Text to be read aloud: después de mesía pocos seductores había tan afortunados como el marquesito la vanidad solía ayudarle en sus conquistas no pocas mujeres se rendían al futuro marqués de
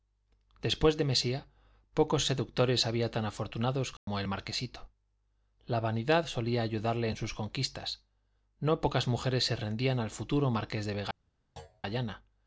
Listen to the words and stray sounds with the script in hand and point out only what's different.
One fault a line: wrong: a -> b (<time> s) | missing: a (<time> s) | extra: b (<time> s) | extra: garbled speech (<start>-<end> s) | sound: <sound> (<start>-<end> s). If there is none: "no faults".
sound: dropout (4.0-4.1 s)
sound: thud (11.6-11.8 s)